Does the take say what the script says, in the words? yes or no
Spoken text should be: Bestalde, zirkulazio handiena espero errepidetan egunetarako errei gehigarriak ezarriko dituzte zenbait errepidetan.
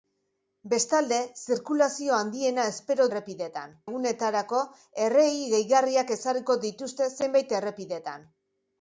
yes